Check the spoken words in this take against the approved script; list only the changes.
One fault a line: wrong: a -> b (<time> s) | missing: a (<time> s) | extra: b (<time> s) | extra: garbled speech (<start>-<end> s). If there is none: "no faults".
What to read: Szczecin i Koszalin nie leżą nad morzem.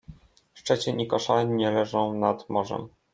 no faults